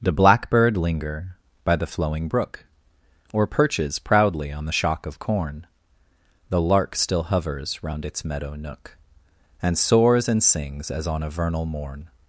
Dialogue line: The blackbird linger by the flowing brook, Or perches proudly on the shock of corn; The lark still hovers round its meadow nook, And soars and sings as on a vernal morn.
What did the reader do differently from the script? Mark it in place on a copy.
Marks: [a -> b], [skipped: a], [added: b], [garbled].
The blackbird linger by the flowing brook, Or perches proudly on the shock of corn; The lark still hovers round its meadow nook, And soars and sings as on a vernal morn.